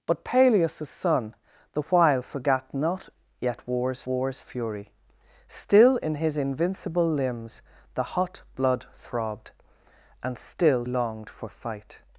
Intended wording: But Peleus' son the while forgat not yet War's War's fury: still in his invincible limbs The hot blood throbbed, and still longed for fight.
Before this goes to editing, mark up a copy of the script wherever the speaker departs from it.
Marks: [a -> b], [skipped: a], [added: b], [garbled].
But Peleus' son the while forgat not yet War's War's fury: still in his invincible limbs The hot blood throbbed, and still longed for fight.